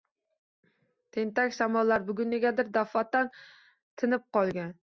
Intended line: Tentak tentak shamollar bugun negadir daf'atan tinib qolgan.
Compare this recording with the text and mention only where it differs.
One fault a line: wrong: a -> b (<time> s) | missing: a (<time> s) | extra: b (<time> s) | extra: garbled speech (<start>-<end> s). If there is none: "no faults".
missing: tentak (1.5 s)